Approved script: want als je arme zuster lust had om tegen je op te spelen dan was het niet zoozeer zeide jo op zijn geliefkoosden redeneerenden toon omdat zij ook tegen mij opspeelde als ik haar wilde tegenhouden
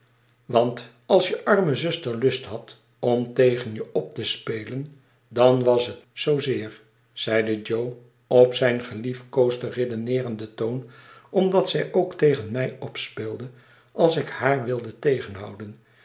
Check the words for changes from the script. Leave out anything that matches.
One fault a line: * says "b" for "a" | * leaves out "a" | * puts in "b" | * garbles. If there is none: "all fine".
* leaves out "niet"